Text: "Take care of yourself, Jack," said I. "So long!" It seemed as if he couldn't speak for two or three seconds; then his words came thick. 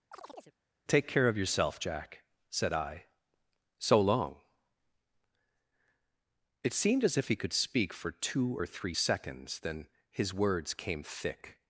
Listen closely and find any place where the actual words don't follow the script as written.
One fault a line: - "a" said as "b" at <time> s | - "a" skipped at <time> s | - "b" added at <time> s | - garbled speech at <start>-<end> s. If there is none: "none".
- "couldn't" said as "could" at 7.4 s